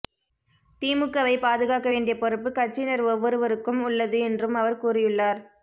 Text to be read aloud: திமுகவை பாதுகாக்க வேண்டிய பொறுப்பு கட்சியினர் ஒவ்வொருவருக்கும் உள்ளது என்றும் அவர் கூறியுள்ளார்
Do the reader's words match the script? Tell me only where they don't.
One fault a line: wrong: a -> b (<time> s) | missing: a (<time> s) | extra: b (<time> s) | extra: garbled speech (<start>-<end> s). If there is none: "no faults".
no faults